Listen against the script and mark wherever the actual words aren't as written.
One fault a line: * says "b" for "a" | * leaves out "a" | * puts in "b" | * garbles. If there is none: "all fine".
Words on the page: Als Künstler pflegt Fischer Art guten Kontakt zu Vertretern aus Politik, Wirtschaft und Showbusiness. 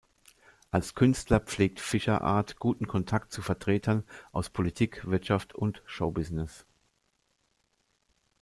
all fine